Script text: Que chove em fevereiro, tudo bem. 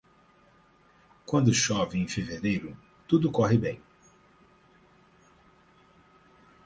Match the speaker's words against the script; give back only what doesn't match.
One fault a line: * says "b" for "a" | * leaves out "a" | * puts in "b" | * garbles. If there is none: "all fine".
* says "Quando" for "Que"
* puts in "corre"